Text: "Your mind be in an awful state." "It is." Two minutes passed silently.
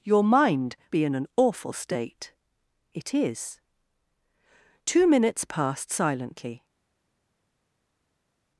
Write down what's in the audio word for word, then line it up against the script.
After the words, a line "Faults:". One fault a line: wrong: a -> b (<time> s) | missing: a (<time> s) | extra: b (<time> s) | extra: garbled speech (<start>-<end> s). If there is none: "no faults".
"Your mind be in an awful state." "It is." Two minutes passed silently.
Faults:
no faults